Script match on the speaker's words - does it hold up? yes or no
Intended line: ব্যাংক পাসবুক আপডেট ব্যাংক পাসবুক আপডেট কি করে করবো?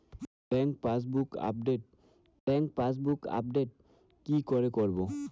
yes